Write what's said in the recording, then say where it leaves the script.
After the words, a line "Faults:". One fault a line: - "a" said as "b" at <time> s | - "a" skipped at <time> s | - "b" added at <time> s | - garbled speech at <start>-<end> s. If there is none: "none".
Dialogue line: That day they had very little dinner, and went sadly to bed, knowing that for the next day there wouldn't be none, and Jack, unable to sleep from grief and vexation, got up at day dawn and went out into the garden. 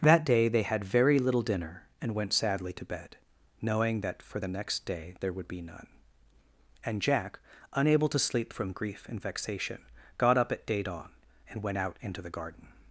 That day they had very little dinner, and went sadly to bed, knowing that for the next day there would be none, and Jack, unable to sleep from grief and vexation, got up at day dawn and went out into the garden.
Faults:
- "wouldn't" said as "would" at 5.3 s